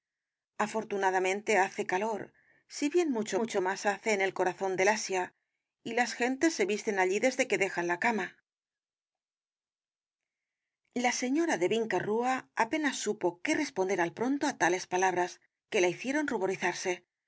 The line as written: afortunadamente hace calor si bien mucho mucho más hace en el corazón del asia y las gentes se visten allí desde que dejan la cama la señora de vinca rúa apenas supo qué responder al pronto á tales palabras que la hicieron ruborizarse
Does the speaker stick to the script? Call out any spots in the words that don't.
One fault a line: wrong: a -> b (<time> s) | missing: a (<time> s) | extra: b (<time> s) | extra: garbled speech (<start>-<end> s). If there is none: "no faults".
no faults